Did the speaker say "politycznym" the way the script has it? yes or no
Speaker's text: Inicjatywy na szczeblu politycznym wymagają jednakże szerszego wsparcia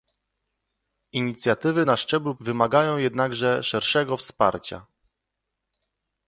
no